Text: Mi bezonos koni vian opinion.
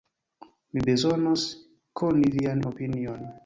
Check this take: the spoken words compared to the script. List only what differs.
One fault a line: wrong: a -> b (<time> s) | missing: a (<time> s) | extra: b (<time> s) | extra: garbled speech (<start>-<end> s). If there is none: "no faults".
no faults